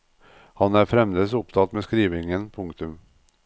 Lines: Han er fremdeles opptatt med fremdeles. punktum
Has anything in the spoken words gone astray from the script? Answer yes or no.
yes